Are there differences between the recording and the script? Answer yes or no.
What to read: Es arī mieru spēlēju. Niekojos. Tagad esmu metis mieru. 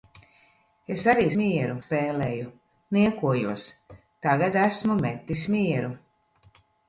no